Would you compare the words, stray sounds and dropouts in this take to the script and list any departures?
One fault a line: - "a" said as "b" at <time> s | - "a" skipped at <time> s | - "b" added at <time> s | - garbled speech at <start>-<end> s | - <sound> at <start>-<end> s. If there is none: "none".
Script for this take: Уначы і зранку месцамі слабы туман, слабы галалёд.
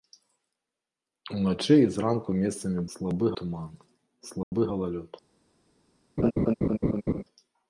- dropout at 4.4-4.5 s
- laugh at 6.2-7.2 s